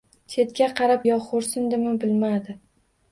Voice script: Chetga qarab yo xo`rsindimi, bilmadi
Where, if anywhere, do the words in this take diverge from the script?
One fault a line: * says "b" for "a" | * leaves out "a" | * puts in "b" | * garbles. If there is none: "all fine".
all fine